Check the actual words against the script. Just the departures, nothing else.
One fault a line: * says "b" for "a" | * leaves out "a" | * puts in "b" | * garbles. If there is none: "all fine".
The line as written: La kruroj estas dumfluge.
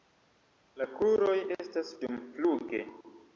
all fine